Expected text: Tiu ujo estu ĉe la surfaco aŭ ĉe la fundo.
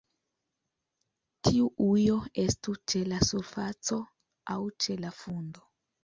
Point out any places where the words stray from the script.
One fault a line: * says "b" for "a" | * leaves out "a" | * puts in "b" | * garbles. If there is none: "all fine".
all fine